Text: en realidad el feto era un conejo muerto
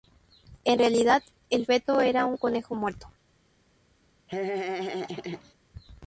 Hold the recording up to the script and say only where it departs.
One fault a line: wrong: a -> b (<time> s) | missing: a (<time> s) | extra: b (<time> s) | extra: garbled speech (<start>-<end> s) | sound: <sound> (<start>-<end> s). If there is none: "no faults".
sound: laugh (4.3-5.5 s)